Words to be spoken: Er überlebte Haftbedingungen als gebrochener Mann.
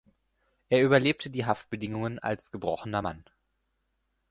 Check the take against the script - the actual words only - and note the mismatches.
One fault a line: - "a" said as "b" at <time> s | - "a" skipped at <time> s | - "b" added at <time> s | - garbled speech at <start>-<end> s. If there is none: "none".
- "die" added at 1.3 s